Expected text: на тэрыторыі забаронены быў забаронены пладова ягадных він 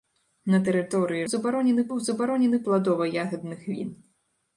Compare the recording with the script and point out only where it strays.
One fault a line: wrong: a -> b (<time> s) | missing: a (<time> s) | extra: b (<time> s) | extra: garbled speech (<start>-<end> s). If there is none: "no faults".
no faults